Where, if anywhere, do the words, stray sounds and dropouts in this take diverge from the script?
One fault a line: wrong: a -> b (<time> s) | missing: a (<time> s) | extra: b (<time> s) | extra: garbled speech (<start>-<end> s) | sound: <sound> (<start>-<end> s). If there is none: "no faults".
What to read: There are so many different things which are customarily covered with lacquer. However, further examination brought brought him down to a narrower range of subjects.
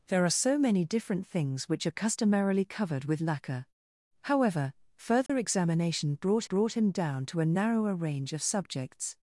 sound: dropout (5.3-5.3 s)